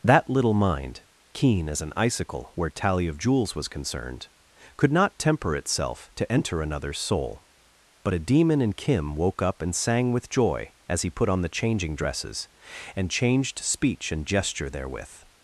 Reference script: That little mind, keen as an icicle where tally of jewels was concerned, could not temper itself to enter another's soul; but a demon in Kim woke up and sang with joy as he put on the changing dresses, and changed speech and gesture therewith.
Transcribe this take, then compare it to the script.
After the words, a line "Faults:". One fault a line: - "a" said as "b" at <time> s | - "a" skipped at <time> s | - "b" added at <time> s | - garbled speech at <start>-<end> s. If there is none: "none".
That little mind, keen as an icicle where tally of jewels was concerned, could not temper itself to enter another's soul; but a demon in Kim woke up and sang with joy as he put on the changing dresses, and changed speech and gesture therewith.
Faults:
none